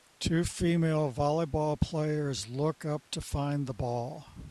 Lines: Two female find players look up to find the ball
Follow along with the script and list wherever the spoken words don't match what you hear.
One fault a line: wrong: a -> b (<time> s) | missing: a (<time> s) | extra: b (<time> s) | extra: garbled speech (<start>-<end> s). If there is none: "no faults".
wrong: find -> volleyball (1.1 s)